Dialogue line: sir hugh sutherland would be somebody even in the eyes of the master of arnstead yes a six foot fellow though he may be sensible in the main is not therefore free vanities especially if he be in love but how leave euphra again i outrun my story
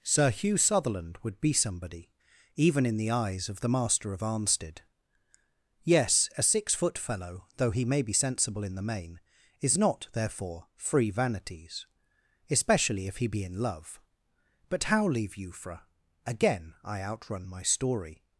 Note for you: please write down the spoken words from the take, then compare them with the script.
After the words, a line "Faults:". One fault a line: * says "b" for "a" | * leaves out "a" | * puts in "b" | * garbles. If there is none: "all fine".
sir hugh sutherland would be somebody even in the eyes of the master of arnstead yes a six foot fellow though he may be sensible in the main is not therefore free vanities especially if he be in love but how leave euphra again i outrun my story
Faults:
all fine